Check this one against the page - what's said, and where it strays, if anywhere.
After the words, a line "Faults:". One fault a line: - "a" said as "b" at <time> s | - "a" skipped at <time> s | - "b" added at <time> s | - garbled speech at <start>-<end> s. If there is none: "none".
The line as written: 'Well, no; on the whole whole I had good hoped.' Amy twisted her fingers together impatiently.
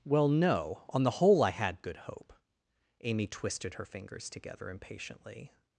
'Well, no; on the whole I had good hope.' Amy twisted her fingers together impatiently.
Faults:
- "whole" skipped at 1.4 s
- "hoped" said as "hope" at 2.0 s